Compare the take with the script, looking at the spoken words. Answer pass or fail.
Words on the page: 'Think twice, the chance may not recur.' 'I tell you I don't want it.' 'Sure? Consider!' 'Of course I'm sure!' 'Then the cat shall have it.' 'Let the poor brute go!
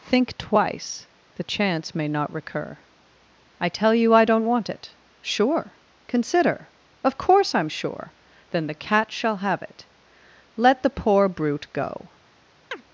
pass